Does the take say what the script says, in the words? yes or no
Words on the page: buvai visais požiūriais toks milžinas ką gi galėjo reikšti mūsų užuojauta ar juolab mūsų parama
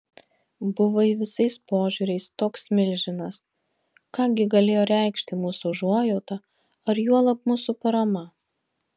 yes